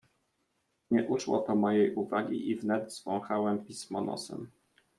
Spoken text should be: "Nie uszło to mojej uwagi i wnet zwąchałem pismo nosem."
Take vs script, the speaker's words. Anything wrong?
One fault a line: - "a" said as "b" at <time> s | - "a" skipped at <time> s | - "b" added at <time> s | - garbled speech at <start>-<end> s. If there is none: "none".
none